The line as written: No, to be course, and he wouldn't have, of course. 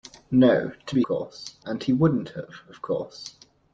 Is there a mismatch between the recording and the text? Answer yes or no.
no